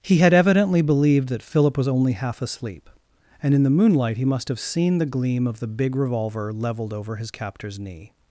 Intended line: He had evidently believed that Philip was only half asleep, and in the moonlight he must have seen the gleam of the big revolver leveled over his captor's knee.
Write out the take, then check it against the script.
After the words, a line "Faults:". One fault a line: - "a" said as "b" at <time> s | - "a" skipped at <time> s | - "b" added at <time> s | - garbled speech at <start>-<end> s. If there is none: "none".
He had evidently believed that Philip was only half asleep, and in the moonlight he must have seen the gleam of the big revolver leveled over his captor's knee.
Faults:
none